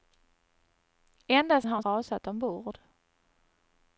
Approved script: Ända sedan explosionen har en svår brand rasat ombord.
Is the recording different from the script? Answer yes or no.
yes